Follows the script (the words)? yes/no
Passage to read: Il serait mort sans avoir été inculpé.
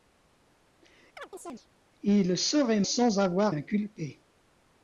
no